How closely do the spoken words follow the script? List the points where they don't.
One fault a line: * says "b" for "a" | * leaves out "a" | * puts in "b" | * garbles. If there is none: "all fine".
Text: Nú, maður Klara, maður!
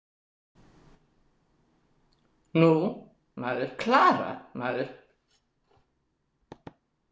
all fine